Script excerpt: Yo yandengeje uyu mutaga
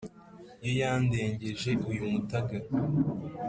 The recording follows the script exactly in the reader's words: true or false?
true